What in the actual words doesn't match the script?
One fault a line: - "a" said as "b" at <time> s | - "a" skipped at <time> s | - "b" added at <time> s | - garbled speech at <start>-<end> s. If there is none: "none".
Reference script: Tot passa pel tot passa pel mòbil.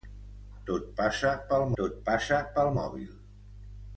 none